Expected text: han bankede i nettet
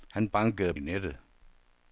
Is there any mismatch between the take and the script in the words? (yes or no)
no